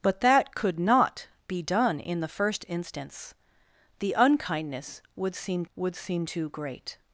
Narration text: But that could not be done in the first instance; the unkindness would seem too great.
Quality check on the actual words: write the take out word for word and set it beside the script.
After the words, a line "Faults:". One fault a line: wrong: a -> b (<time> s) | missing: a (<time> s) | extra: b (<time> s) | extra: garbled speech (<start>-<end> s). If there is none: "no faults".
But that could not be done in the first instance; the unkindness would seem would seem too great.
Faults:
extra: would seem (5.7 s)